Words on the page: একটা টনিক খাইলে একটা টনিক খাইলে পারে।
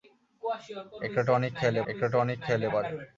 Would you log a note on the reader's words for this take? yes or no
no